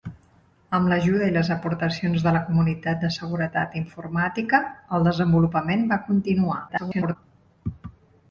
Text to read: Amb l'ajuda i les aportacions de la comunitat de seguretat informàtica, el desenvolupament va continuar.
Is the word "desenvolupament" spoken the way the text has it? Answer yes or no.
yes